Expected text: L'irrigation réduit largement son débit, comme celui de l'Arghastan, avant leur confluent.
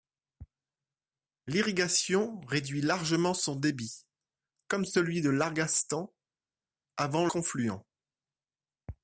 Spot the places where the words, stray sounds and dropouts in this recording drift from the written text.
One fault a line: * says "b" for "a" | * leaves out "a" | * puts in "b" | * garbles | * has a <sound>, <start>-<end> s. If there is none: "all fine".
* leaves out "leur"